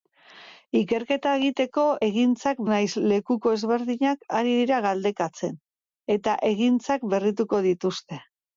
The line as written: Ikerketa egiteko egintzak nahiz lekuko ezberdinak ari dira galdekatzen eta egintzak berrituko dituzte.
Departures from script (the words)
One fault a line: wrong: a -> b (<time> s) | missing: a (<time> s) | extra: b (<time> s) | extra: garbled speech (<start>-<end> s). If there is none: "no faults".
no faults